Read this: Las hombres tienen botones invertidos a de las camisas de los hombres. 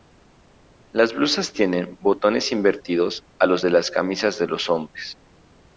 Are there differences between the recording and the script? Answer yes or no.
yes